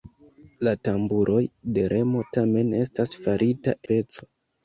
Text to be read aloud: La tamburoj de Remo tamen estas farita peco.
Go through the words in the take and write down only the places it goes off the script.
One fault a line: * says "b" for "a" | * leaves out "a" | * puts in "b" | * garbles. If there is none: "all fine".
all fine